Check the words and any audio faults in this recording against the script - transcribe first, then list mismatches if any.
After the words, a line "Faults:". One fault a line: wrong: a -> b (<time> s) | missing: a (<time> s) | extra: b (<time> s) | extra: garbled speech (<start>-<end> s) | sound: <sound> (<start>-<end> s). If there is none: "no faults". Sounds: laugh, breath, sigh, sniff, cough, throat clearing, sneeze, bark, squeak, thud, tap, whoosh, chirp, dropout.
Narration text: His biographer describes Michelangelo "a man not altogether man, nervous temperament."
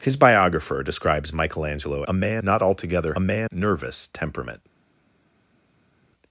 His biographer describes Michelangelo "a man not altogether man, nervous temperament."
Faults:
no faults